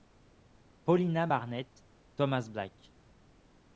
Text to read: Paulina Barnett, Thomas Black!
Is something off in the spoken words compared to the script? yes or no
no